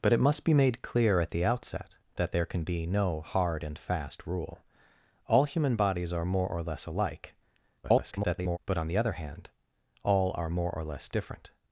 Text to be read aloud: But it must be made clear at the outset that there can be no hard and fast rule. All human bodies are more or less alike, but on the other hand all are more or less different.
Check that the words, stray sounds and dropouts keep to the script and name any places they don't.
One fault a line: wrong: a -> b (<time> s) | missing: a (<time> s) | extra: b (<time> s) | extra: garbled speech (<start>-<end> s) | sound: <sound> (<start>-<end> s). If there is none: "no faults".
extra: garbled speech (7.8-8.6 s)